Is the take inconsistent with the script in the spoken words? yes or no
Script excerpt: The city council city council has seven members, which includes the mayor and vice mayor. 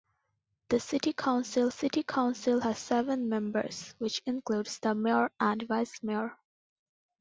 no